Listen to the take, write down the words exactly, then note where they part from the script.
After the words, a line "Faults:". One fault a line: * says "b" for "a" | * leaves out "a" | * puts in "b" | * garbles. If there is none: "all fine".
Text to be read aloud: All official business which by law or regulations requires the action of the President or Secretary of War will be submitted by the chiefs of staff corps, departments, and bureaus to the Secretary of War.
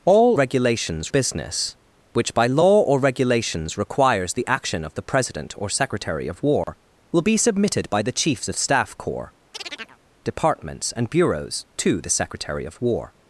All regulations business which by law or regulations requires the action of the President or Secretary of War will be submitted by the chiefs of staff corps, departments, and bureaus to the Secretary of War.
Faults:
* says "regulations" for "official"